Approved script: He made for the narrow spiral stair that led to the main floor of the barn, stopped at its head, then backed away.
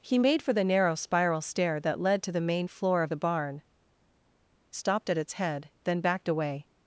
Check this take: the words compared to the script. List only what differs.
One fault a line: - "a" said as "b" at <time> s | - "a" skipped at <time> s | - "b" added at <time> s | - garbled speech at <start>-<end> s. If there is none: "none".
none